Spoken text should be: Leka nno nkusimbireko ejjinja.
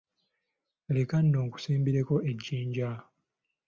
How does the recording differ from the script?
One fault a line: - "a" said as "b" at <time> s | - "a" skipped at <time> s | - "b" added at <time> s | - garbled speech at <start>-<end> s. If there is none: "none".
none